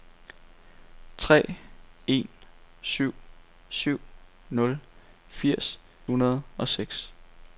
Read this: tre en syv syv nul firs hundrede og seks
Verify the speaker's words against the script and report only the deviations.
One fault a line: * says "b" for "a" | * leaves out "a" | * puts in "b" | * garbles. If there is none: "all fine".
all fine